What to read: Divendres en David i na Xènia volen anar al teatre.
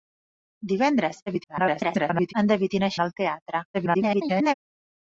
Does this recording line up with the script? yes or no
no